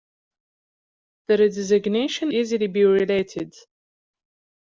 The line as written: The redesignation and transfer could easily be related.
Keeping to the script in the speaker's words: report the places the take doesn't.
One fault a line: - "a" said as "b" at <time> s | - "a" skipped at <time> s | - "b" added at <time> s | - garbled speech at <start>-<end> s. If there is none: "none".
- "and transfer could" skipped at 2.3 s